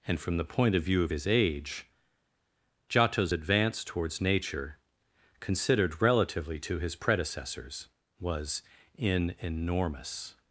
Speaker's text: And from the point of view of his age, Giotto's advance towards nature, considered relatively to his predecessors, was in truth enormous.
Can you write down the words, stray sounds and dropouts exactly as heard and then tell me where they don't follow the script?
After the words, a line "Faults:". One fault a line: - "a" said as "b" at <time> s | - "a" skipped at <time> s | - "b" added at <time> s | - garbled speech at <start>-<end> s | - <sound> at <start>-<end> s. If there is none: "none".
And from the point of view of his age, Giotto's advance towards nature, considered relatively to his predecessors, was in enormous.
Faults:
- "truth" skipped at 9.4 s